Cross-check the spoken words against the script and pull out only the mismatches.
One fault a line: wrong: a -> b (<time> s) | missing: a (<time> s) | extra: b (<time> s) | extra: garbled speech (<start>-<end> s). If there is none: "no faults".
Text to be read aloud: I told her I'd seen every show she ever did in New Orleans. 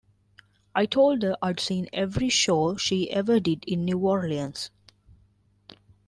no faults